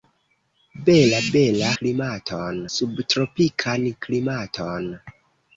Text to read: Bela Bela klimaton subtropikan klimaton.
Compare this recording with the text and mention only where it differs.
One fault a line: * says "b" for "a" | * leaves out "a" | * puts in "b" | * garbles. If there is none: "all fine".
all fine